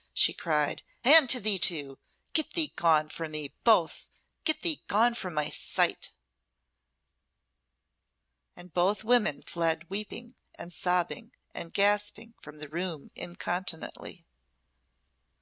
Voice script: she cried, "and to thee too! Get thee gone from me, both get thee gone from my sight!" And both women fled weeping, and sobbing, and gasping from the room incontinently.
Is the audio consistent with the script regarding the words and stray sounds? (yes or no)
yes